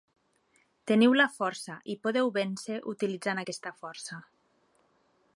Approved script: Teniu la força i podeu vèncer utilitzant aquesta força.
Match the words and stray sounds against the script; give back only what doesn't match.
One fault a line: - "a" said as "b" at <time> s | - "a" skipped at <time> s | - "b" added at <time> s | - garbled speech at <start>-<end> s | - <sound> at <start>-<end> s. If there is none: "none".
none